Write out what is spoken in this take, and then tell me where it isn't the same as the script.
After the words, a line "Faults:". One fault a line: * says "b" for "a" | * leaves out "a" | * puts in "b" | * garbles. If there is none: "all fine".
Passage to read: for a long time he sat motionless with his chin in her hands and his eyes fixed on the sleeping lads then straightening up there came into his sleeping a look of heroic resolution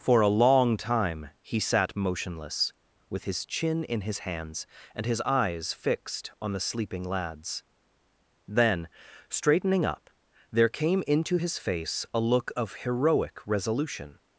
for a long time he sat motionless with his chin in his hands and his eyes fixed on the sleeping lads then straightening up there came into his face a look of heroic resolution
Faults:
* says "his" for "her"
* says "face" for "sleeping"